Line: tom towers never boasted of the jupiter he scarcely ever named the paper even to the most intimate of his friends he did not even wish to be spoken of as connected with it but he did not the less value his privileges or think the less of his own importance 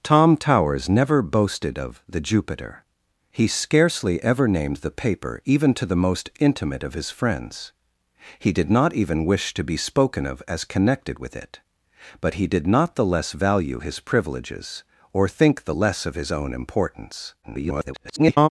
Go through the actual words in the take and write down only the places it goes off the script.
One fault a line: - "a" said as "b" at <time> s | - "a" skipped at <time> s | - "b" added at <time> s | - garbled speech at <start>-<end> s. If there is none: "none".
- garbled speech at 17.4-18.5 s